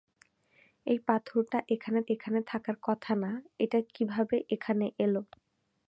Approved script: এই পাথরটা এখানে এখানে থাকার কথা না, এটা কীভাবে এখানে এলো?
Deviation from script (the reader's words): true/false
false